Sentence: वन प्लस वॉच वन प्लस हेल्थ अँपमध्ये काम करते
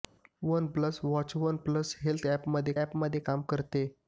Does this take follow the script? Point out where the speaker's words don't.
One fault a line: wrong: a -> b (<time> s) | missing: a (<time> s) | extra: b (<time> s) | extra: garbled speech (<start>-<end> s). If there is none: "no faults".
extra: अँपमध्ये (2.8 s)